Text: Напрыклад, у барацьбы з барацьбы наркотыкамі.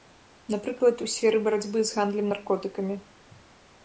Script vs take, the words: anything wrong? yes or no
yes